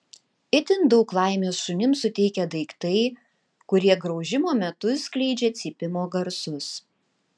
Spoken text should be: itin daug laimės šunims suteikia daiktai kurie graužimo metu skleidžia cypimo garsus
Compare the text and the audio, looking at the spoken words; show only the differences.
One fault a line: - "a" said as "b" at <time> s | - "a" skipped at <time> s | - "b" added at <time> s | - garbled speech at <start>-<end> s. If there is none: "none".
none